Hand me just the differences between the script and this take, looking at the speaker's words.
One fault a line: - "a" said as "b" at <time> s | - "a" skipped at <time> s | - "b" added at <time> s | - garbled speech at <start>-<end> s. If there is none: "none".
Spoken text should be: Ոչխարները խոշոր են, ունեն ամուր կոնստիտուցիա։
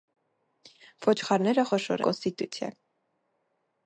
- "են ունեն ամուր" skipped at 2.0 s